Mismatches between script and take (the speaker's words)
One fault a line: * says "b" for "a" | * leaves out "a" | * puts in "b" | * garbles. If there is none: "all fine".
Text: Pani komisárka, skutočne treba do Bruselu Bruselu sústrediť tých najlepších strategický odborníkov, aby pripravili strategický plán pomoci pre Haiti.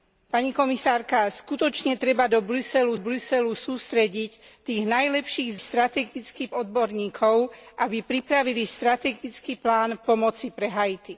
all fine